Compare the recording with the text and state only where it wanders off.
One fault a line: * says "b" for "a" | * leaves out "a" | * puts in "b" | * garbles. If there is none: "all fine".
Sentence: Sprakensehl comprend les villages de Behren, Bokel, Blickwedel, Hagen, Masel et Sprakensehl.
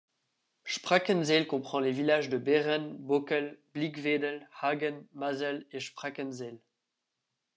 all fine